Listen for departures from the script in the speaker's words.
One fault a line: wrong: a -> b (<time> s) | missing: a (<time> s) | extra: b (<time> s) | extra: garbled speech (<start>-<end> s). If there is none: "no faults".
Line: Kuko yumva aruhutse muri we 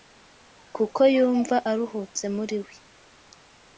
no faults